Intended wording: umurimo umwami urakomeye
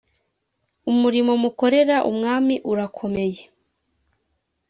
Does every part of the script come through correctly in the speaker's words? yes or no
no